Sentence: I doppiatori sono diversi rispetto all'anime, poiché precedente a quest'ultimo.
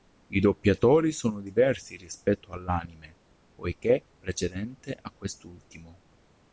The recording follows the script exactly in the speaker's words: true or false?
true